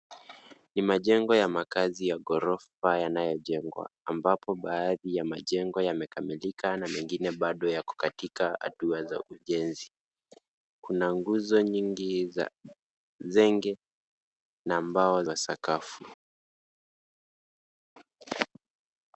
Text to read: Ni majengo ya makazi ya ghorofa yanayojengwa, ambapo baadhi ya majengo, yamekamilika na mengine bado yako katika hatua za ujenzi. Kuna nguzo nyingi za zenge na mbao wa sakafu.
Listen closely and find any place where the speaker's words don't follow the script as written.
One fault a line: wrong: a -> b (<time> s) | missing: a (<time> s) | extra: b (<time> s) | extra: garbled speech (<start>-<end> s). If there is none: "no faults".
no faults